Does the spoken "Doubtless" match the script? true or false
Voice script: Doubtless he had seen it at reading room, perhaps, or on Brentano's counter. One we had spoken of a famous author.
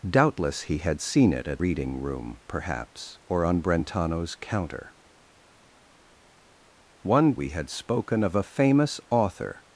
true